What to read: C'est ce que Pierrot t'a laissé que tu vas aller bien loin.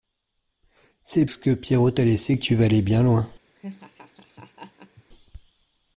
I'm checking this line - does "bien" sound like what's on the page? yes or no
yes